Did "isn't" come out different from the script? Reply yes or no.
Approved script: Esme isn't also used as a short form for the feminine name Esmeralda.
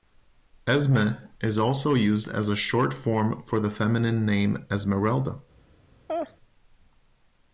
yes